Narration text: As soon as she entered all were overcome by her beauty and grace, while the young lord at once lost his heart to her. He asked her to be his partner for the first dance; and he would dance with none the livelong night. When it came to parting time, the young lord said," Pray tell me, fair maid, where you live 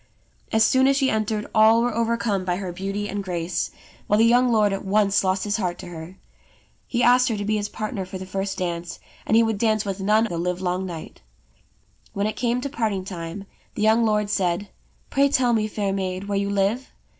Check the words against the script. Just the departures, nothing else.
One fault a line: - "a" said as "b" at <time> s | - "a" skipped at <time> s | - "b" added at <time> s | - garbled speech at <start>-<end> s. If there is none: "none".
none